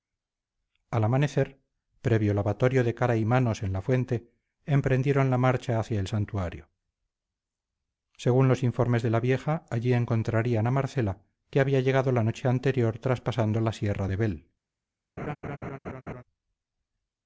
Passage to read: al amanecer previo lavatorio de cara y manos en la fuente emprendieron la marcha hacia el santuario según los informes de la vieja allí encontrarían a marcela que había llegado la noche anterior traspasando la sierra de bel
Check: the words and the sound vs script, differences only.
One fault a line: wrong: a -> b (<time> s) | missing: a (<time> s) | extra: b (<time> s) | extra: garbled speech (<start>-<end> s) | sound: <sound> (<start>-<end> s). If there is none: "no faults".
sound: laugh (15.2-16.2 s)